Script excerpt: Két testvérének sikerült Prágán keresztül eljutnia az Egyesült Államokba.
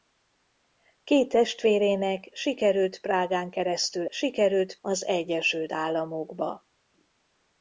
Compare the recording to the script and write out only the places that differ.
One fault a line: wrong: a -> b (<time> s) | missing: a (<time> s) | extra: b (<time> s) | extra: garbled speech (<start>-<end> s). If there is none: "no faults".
wrong: eljutnia -> sikerült (4.1 s)